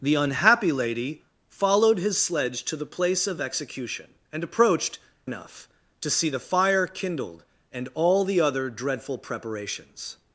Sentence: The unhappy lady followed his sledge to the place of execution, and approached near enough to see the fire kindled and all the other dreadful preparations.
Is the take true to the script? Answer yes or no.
no